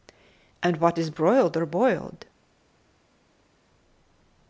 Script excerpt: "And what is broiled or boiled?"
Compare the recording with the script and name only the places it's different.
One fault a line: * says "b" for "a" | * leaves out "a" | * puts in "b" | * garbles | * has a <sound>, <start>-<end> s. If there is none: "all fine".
all fine